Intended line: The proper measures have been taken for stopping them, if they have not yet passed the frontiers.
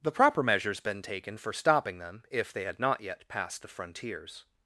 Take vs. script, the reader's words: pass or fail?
fail